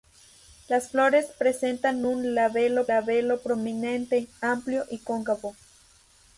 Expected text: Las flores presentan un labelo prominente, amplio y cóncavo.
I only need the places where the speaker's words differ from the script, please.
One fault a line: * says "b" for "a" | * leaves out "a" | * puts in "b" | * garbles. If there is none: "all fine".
* puts in "labelo"